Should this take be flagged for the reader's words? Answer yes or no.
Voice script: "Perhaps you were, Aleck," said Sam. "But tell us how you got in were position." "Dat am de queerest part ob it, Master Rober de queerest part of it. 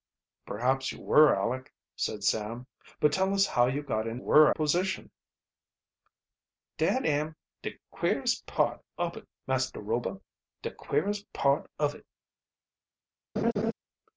no